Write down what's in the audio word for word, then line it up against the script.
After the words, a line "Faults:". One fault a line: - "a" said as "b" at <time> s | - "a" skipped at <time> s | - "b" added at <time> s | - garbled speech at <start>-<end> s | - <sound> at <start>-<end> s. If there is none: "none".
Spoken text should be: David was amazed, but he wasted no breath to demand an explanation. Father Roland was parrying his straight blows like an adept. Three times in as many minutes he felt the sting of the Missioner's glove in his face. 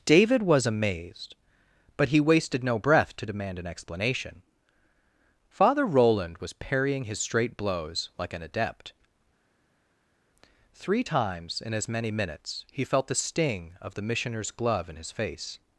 David was amazed, but he wasted no breath to demand an explanation. Father Roland was parrying his straight blows like an adept. Three times in as many minutes he felt the sting of the Missioner's glove in his face.
Faults:
none